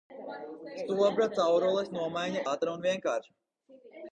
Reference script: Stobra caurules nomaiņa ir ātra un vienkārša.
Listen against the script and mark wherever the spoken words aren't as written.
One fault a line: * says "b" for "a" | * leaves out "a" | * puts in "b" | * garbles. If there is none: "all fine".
* leaves out "ir"